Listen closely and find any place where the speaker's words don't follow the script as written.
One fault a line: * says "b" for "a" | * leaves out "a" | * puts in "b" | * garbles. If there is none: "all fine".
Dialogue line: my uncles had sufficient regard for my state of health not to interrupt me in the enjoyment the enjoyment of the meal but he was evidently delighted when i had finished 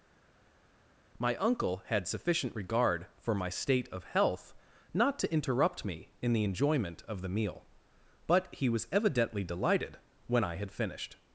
* says "uncle" for "uncles"
* leaves out "the enjoyment"